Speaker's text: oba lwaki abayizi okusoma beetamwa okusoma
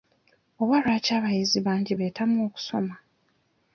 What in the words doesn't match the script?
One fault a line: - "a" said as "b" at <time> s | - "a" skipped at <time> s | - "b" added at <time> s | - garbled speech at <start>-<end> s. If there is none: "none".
- "okusoma" said as "bangi" at 1.6 s